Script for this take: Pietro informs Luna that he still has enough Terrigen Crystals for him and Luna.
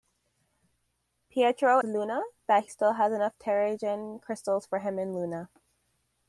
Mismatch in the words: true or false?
true